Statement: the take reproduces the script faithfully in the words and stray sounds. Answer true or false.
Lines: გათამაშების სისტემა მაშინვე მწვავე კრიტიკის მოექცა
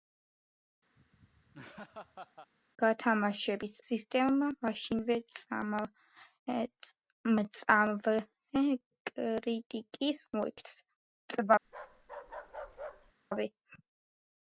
false